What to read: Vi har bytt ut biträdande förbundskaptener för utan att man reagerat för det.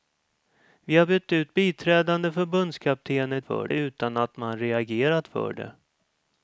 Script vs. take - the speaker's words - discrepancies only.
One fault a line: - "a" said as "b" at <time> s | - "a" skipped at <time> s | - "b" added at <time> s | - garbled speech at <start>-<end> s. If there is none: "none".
none